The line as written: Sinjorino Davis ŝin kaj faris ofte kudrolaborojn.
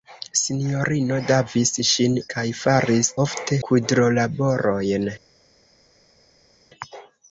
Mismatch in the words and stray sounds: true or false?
false